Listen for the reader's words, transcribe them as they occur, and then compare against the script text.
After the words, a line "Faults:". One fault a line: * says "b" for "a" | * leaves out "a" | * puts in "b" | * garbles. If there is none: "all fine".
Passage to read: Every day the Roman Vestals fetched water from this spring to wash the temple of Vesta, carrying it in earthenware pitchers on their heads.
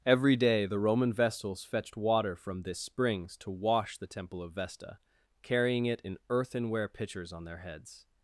Every day the Roman Vestals fetched water from this springs to wash the temple of Vesta, carrying it in earthenware pitchers on their heads.
Faults:
* says "springs" for "spring"